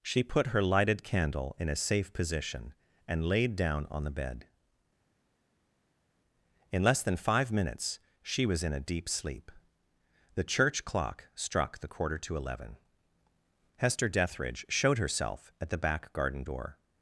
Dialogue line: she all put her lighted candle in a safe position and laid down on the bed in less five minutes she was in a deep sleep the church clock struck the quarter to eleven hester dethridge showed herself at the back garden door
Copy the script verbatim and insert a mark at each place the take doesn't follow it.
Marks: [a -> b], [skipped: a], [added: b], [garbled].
she [skipped: all] put her lighted candle in a safe position and laid down on the bed in less [added: than] five minutes she was in a deep sleep the church clock struck the quarter to eleven hester dethridge showed herself at the back garden door